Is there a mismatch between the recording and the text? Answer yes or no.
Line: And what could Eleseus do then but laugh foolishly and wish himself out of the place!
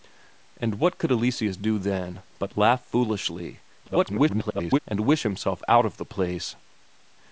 yes